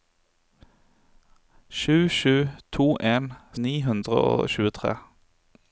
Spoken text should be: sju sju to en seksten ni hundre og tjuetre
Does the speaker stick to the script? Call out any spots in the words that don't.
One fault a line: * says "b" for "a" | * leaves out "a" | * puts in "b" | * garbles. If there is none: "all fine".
* leaves out "seksten"